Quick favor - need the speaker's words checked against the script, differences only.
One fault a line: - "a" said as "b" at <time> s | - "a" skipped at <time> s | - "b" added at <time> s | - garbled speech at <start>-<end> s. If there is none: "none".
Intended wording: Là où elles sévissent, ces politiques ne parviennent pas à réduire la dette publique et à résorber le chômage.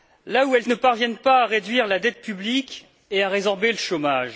- "sévissent ces politiques" skipped at 0.6 s